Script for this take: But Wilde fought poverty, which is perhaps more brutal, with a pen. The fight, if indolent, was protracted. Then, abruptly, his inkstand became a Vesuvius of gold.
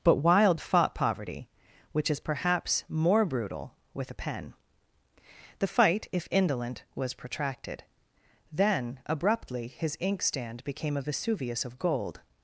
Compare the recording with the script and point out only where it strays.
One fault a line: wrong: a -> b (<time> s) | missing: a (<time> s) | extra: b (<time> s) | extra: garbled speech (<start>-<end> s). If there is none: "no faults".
no faults